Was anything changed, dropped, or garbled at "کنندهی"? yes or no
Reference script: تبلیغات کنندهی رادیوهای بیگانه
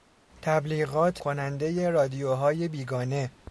no